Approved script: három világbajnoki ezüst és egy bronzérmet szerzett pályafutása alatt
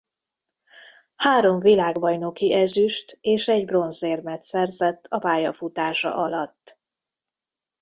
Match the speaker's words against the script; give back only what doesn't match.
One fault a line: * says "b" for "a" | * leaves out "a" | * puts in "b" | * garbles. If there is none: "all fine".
* puts in "a"